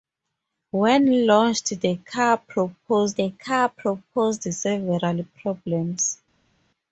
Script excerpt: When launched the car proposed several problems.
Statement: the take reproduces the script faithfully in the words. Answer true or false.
false